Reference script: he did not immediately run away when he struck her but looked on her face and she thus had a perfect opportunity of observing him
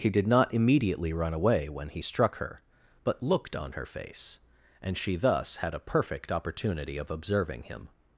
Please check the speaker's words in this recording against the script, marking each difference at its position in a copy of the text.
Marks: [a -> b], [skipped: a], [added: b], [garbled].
he did not immediately run away when he struck her but looked on her face and she thus had a perfect opportunity of observing him